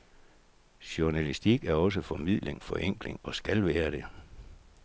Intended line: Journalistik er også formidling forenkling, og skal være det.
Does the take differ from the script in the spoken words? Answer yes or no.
no